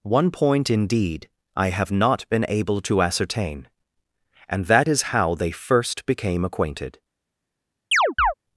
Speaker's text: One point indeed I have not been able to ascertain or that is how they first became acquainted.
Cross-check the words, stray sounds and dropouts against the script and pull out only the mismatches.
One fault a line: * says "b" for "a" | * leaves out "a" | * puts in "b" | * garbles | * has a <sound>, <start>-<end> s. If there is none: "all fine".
* says "and" for "or"
* has a chirp, 7.9-8.3 s